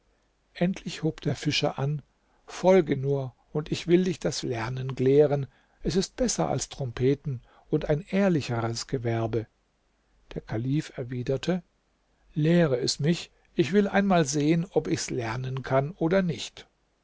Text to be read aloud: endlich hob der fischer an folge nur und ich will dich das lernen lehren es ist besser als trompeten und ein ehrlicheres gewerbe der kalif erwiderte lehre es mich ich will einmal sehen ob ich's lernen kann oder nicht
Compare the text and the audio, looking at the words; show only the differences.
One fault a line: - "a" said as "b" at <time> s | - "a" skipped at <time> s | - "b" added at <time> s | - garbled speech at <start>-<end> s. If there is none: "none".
none